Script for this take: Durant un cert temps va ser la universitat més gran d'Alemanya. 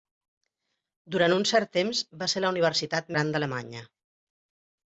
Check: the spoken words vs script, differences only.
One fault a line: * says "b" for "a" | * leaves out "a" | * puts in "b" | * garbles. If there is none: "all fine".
* leaves out "més"